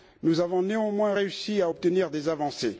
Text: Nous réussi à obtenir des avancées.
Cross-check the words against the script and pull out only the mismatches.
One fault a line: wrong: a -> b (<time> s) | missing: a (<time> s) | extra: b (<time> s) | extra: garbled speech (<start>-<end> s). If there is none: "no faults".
extra: avons néanmoins (0.4 s)